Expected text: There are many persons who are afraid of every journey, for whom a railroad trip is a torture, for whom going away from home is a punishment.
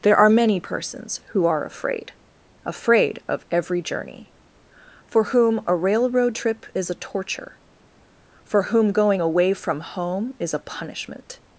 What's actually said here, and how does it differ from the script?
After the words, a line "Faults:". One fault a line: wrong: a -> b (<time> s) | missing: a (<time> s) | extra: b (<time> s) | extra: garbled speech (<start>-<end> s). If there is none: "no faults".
There are many persons who are afraid afraid of every journey, for whom a railroad trip is a torture, for whom going away from home is a punishment.
Faults:
extra: afraid (2.6 s)